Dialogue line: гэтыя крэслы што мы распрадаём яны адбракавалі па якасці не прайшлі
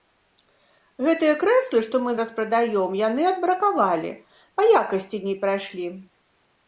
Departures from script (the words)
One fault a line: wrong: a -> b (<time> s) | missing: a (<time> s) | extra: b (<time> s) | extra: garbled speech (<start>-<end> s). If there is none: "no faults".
no faults